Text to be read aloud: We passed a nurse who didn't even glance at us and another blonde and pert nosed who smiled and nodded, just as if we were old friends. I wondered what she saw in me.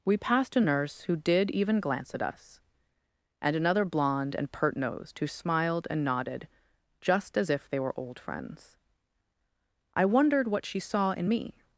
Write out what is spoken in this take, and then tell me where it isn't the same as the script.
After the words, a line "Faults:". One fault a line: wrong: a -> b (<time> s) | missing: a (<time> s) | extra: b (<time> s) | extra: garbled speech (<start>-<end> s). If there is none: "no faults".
We passed a nurse who did even glance at us and another blonde and pert nosed who smiled and nodded, just as if they were old friends. I wondered what she saw in me.
Faults:
wrong: didn't -> did (1.2 s)
wrong: we -> they (7.7 s)